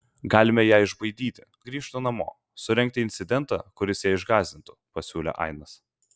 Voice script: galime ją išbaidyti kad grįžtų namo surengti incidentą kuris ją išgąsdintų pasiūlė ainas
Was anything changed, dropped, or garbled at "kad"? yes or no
yes